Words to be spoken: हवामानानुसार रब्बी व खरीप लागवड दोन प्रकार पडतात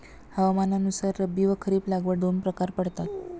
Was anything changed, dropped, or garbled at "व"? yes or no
no